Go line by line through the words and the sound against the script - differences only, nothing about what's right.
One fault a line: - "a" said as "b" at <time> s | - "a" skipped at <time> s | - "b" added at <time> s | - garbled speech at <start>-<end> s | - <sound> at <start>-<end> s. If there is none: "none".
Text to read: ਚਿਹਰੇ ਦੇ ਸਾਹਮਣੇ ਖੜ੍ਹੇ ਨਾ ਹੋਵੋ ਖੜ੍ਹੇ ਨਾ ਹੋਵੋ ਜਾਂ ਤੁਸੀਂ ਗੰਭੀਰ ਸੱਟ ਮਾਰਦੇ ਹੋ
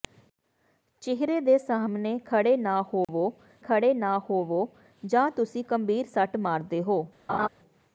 - dropout at 3.0-3.1 s
- laugh at 7.3-7.5 s